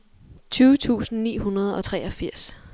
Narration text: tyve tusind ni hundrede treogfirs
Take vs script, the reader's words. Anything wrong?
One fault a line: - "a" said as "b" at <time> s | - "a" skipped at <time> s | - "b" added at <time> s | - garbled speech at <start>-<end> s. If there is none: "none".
- "og" added at 1.8 s